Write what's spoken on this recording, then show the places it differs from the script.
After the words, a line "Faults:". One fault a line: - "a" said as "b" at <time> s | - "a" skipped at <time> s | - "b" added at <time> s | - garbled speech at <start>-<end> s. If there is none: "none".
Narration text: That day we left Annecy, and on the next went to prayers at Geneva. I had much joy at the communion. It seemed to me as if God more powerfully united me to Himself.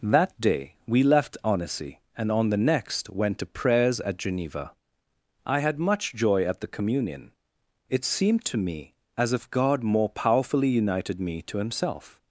That day we left Annecy, and on the next went to prayers at Geneva. I had much joy at the communion. It seemed to me as if God more powerfully united me to Himself.
Faults:
none